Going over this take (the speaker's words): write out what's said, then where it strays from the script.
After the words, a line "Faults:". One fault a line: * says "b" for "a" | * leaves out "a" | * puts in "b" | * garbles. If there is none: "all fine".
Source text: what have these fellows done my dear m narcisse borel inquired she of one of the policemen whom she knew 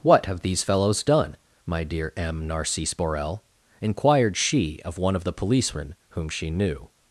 what have these fellows done my dear m narcisse borel inquired she of one of the policemen whom she knew
Faults:
all fine